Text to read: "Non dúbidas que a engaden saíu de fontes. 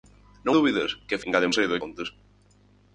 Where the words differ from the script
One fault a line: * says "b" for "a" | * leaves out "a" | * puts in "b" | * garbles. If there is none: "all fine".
all fine